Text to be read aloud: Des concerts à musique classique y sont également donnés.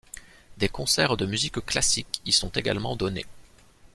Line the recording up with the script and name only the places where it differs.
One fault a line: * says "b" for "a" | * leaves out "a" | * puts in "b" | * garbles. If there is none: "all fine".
* says "de" for "à"